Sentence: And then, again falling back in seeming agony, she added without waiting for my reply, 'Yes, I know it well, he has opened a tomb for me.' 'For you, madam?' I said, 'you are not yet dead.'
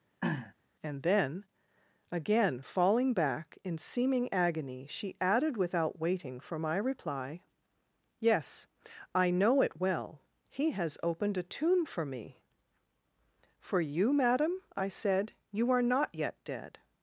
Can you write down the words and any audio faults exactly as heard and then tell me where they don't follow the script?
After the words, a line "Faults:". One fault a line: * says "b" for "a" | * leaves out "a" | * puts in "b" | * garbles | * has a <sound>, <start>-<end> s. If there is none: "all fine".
And then, again falling back in seeming agony, she added without waiting for my reply, 'Yes, I know it well, he has opened a tomb for me.' 'For you, madam?' I said, 'you are not yet dead.'
Faults:
* has a throat clearing, 0.2-0.5 s